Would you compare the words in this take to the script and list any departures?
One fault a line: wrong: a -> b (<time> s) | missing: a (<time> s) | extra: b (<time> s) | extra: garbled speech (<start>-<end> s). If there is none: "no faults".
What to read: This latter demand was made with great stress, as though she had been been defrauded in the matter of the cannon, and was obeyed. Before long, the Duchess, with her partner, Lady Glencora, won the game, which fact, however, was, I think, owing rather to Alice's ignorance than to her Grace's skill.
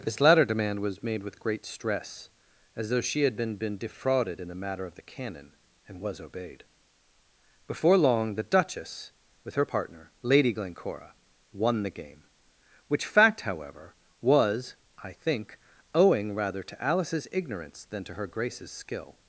no faults